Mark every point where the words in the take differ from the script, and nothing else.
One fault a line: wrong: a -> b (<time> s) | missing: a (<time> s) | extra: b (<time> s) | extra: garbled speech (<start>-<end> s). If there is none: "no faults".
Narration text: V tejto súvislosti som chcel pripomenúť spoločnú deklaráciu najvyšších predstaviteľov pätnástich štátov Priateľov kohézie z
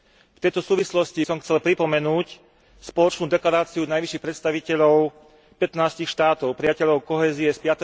no faults